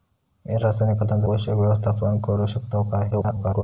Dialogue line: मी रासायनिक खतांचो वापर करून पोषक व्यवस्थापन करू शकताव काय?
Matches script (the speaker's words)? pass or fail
fail